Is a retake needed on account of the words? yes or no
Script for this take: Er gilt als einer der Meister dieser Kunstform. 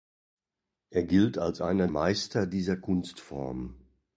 yes